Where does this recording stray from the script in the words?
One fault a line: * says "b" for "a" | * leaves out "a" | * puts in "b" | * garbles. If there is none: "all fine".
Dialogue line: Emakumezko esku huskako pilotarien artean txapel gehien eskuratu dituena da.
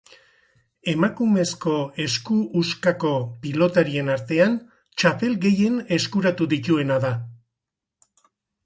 all fine